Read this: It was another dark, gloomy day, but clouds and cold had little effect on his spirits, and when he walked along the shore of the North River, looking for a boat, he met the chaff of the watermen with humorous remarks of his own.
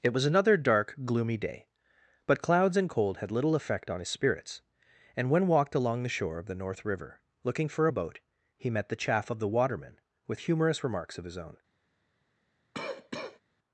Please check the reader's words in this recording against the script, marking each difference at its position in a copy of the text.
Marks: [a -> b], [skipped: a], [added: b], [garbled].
It was another dark, gloomy day, but clouds and cold had little effect on his spirits, and when [skipped: he] walked along the shore of the North River, looking for a boat, he met the chaff of the watermen with humorous remarks of his own.